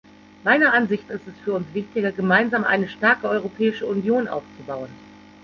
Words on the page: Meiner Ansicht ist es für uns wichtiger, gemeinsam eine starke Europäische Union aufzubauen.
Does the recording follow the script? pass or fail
pass